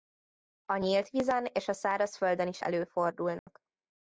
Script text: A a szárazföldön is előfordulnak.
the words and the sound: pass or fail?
fail